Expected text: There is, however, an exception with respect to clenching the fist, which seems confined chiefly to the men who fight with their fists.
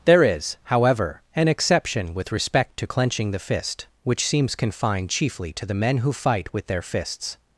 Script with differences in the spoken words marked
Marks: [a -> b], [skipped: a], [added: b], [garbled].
There is, however, an exception with respect to clenching the fist, which seems confined chiefly to the men who fight with their fists.